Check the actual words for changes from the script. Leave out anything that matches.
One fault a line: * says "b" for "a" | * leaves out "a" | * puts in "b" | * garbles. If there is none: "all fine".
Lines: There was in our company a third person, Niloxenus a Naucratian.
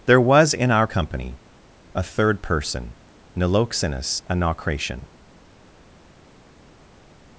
all fine